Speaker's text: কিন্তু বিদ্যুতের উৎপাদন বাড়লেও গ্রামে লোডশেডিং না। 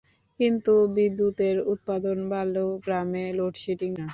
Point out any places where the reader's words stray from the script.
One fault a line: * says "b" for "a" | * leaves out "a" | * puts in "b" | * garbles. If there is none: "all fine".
all fine